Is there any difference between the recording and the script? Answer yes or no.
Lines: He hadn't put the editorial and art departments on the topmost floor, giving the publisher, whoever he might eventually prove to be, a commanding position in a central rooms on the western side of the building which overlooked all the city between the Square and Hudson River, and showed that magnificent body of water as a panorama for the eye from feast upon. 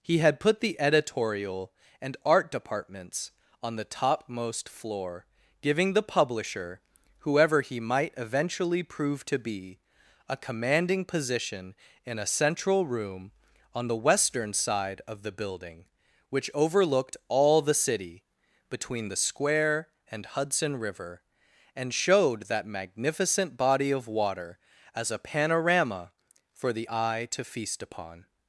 yes